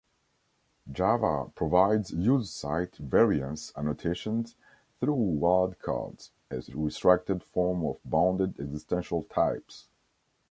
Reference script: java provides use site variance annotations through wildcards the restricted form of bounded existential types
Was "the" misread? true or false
true